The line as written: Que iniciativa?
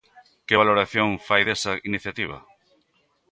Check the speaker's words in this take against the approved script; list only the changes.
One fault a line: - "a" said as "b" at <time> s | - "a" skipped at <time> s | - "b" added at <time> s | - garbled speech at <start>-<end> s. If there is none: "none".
- "valoración fai desa" added at 0.6 s